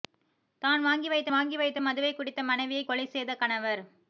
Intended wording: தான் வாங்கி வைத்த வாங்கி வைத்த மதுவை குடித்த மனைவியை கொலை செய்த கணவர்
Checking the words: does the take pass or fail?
pass